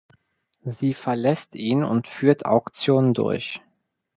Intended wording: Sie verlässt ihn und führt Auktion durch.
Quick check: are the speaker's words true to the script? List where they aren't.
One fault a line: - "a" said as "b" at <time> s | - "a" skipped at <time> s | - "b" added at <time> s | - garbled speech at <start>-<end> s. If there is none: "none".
none